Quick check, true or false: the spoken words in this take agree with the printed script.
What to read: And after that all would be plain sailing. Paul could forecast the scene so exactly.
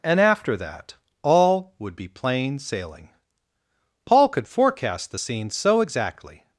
true